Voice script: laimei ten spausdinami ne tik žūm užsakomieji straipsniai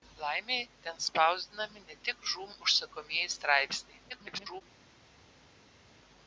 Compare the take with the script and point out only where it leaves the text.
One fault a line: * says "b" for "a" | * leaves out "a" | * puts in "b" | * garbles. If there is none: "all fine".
* garbles